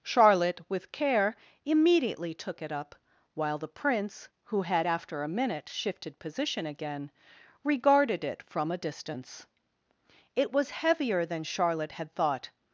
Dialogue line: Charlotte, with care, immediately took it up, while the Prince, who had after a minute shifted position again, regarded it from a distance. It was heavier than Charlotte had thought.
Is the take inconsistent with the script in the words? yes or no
no